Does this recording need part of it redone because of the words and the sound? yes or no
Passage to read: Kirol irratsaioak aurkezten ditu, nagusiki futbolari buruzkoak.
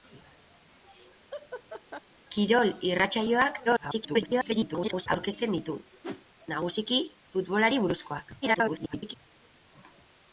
yes